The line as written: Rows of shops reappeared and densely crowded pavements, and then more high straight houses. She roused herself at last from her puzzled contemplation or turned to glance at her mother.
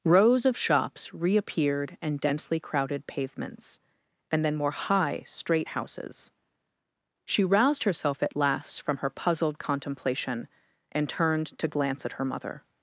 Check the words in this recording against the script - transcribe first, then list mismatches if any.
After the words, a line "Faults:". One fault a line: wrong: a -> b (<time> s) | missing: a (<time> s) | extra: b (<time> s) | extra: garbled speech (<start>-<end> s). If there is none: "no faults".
Rows of shops reappeared and densely crowded pavements, and then more high straight houses. She roused herself at last from her puzzled contemplation and turned to glance at her mother.
Faults:
wrong: or -> and (10.9 s)